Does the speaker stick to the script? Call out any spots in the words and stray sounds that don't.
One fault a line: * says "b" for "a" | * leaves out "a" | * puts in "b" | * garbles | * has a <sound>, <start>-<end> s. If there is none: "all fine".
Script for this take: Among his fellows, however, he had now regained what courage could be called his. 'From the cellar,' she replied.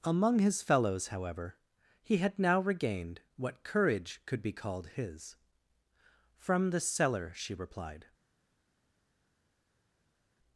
all fine